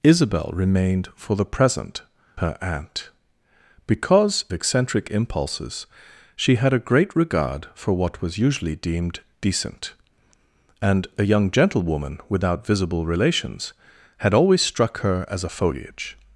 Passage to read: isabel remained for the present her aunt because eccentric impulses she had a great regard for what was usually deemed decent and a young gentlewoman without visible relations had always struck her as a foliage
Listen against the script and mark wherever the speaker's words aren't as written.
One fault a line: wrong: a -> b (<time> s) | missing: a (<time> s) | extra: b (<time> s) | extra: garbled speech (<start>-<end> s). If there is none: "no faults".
no faults